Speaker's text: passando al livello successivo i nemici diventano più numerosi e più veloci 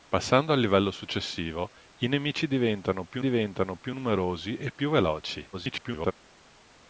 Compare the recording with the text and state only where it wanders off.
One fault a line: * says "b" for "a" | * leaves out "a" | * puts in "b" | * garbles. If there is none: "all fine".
* puts in "diventano più"
* garbles